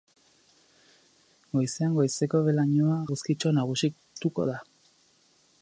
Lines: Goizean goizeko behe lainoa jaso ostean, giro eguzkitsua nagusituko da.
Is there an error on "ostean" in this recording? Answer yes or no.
yes